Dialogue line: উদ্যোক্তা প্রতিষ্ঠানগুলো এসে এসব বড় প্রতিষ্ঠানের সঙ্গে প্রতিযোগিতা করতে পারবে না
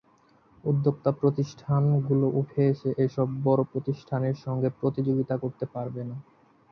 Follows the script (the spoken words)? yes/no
no